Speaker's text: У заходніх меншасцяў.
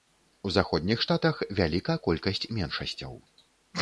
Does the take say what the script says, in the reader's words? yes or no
no